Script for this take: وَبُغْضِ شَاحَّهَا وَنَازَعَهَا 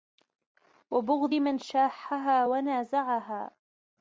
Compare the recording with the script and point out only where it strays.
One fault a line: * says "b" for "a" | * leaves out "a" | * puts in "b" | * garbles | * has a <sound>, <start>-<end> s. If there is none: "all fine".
* puts in "مَنْ"